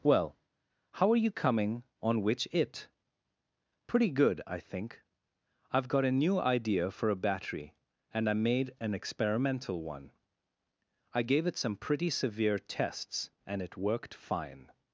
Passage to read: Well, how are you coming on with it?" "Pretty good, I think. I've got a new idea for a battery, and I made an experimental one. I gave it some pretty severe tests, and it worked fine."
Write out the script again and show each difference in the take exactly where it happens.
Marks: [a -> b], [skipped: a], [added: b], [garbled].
Well, how are you coming on [with -> which] it?" "Pretty good, I think. I've got a new idea for a battery, and I made an experimental one. I gave it some pretty severe tests, and it worked fine."